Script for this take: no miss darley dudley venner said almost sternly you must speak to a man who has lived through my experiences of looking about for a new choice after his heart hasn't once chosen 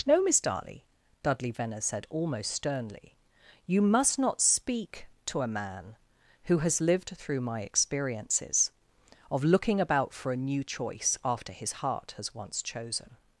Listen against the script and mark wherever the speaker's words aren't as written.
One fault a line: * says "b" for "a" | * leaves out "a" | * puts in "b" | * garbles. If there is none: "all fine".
* puts in "not"
* says "has" for "hasn't"